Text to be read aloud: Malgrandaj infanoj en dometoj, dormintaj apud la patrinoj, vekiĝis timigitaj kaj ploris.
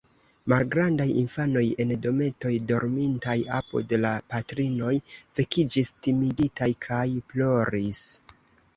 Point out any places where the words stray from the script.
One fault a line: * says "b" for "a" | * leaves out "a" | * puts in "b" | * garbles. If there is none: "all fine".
all fine